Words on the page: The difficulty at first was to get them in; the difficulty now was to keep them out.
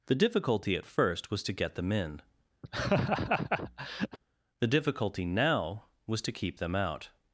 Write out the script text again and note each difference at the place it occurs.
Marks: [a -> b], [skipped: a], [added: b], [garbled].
The difficulty at first was to get them in; the difficulty now was to keep them out.